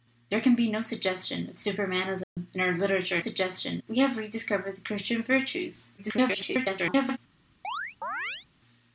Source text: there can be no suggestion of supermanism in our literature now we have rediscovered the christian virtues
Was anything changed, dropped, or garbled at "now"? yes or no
yes